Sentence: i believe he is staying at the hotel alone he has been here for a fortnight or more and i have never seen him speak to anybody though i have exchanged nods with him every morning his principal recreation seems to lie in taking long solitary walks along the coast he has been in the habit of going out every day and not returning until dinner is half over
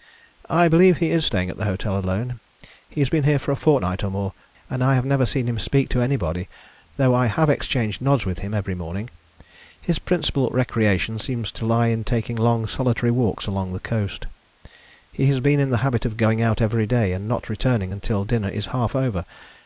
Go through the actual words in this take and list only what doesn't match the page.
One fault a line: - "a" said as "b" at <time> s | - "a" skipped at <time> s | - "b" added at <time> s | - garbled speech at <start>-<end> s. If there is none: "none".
none